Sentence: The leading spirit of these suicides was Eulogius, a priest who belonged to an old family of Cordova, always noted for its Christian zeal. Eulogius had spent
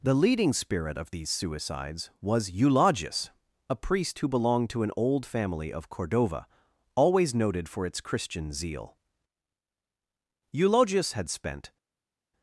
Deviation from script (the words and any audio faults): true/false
false